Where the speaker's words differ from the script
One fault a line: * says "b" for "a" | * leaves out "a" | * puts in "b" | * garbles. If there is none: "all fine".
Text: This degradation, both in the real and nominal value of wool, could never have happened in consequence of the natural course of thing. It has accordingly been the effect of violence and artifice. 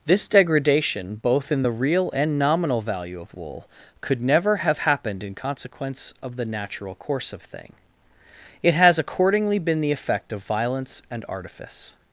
all fine